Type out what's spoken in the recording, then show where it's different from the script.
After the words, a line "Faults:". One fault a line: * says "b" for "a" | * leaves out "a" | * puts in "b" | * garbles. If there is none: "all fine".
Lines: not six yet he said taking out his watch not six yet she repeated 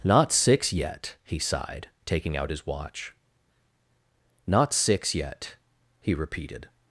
not six yet he sighed taking out his watch not six yet he repeated
Faults:
* says "sighed" for "said"
* says "he" for "she"